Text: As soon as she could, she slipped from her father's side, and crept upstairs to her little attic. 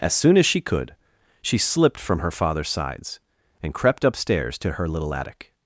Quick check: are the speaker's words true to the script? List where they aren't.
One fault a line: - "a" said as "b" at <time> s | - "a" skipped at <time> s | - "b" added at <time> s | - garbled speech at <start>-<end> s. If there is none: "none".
- "side" said as "sides" at 2.7 s